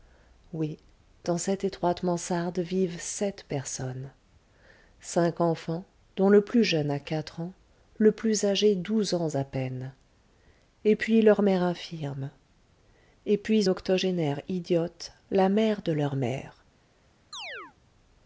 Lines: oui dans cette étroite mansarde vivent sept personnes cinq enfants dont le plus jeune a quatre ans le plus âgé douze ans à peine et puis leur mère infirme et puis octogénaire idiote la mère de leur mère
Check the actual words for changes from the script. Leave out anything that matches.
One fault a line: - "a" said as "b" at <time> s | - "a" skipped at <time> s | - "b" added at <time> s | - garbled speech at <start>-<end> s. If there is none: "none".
none